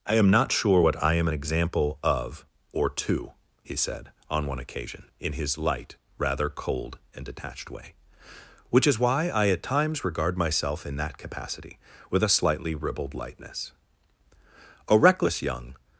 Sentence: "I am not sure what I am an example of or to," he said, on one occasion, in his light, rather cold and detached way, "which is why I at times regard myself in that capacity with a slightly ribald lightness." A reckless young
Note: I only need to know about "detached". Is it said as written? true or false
true